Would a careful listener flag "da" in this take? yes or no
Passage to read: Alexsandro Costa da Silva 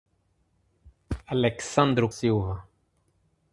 yes